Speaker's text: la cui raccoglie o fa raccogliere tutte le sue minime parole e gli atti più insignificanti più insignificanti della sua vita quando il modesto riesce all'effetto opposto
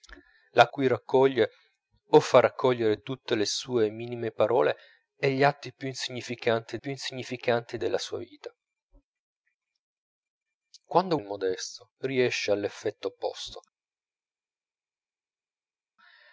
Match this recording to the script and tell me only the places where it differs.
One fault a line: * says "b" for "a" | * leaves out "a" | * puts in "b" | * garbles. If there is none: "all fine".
all fine